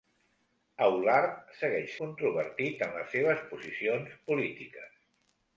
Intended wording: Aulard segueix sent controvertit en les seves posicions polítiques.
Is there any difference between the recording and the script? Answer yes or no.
yes